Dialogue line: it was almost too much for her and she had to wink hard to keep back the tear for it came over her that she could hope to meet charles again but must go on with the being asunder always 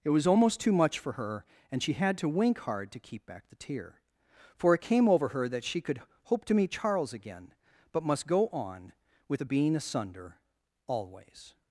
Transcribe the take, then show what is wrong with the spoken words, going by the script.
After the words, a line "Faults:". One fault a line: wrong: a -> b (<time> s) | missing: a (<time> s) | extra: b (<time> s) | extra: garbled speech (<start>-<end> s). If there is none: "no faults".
it was almost too much for her and she had to wink hard to keep back the tear for it came over her that she could hope to meet charles again but must go on with the being asunder always
Faults:
no faults